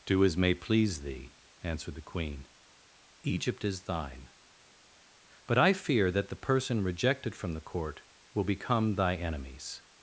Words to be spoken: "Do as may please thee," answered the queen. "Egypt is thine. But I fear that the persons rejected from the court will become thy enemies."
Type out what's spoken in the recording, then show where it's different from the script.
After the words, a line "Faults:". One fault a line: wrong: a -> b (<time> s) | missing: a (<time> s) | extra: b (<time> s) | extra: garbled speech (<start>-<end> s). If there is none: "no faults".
"Do as may please thee," answered the queen. "Egypt is thine. But I fear that the person rejected from the court will become thy enemies."
Faults:
wrong: persons -> person (6.3 s)